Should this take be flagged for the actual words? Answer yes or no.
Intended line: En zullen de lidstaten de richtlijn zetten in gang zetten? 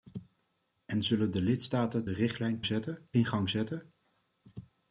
no